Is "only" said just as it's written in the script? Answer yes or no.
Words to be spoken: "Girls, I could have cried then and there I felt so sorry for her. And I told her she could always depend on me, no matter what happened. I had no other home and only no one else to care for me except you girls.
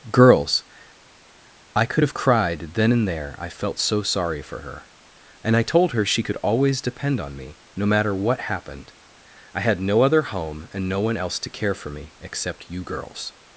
no